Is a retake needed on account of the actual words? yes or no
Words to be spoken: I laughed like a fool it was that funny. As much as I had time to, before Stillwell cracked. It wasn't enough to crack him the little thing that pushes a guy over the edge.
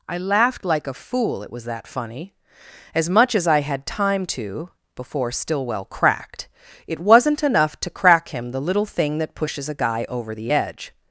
no